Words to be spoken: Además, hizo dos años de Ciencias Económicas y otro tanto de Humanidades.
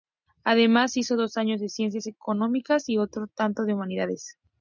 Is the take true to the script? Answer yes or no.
yes